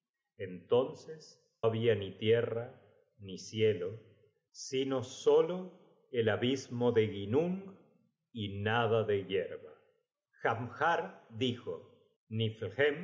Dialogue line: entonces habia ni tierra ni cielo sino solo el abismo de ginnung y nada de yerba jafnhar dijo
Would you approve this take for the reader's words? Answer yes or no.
yes